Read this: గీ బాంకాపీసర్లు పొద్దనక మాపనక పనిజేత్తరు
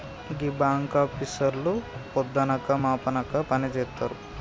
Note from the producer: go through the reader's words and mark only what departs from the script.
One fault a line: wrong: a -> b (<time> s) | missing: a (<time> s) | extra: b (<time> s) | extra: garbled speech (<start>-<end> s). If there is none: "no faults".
no faults